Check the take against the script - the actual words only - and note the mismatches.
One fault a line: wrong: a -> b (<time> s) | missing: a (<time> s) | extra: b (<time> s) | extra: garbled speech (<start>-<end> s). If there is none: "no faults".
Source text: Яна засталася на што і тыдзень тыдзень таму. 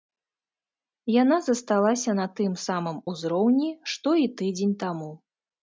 extra: тым самым узроўні (2.4 s)
missing: тыдзень (4.8 s)